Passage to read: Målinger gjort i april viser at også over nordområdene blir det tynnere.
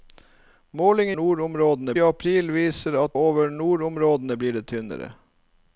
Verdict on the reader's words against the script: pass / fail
fail